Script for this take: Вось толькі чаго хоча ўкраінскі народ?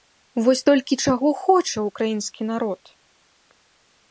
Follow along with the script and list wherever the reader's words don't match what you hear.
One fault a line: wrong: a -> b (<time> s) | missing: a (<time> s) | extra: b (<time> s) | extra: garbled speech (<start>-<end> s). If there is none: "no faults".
no faults